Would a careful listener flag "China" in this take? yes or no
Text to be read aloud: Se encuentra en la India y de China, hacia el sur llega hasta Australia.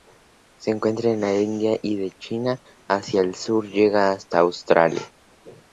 no